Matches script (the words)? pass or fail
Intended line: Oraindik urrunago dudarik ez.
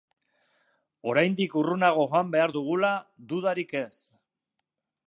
fail